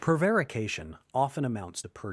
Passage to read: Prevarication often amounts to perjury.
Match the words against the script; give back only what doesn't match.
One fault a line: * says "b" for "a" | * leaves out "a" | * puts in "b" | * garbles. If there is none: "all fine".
all fine